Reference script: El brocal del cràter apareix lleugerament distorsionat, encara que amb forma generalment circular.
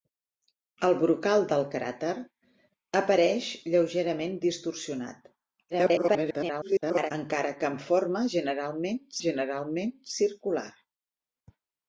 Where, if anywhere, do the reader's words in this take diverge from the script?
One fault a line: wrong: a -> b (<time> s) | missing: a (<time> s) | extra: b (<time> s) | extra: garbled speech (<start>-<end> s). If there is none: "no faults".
extra: garbled speech (5.7-7.1 s)
extra: generalment (9.3 s)